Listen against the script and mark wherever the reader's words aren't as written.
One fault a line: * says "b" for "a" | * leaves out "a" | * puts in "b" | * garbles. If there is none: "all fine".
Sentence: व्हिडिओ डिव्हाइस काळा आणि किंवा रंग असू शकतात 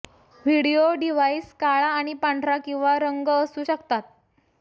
* puts in "पांढरा"